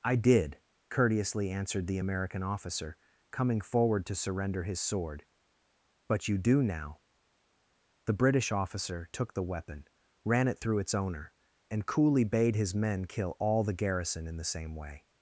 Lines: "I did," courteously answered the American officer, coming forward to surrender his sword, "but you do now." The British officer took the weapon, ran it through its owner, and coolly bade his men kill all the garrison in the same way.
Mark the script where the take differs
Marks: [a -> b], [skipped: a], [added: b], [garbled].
"I did," courteously answered the American officer, coming forward to surrender his sword, "but you do now." The British officer took the weapon, ran it through its owner, and coolly bade his men kill all the garrison in the same way.